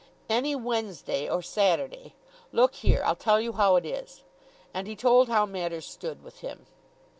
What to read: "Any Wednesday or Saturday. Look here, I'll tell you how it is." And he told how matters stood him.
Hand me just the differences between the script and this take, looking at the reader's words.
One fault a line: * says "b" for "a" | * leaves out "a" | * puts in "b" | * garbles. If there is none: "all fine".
* puts in "with"